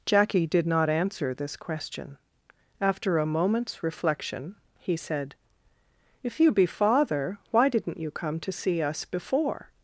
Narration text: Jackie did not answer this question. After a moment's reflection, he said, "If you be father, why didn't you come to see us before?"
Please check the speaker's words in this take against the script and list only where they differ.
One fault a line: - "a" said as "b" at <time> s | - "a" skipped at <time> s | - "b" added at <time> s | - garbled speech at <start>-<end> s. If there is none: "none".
none